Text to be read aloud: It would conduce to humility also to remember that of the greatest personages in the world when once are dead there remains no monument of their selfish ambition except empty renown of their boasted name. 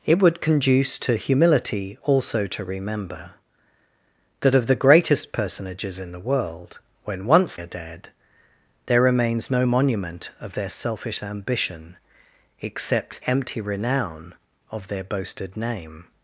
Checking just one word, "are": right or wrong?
right